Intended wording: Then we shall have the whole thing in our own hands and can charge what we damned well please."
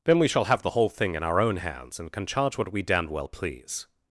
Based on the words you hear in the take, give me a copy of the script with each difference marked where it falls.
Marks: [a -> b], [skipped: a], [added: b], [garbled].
Then we shall have the whole thing in our own hands and can charge what we damned well please."